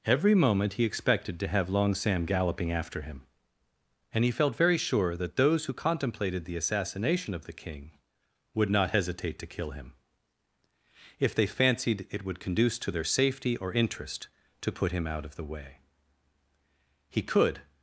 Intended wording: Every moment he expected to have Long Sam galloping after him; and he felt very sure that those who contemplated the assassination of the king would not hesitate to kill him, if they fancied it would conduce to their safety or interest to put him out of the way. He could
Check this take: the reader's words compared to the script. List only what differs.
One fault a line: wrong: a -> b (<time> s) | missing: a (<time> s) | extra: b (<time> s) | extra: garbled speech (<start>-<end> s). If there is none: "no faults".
no faults